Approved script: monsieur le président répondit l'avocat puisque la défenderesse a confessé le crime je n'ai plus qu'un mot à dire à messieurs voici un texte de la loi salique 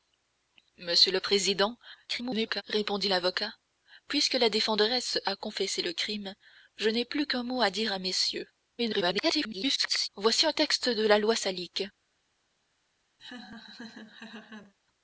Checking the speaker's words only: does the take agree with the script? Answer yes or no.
no